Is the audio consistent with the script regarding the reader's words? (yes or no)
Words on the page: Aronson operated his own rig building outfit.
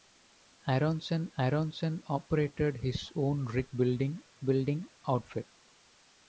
no